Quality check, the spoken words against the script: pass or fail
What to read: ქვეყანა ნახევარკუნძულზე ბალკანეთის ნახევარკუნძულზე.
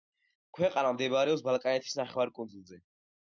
fail